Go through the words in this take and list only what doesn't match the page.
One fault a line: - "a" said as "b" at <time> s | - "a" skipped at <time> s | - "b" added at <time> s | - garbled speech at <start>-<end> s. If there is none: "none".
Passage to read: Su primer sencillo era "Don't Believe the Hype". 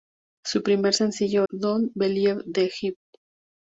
- "era" skipped at 1.5 s